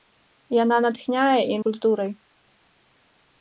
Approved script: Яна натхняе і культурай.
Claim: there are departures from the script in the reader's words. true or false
false